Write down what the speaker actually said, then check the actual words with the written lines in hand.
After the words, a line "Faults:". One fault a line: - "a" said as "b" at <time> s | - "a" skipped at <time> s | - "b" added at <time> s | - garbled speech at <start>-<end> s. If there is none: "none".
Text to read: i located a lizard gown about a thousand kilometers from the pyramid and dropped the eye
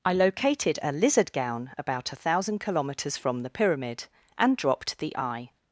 i located a lizard gown about a thousand kilometers from the pyramid and dropped the eye
Faults:
none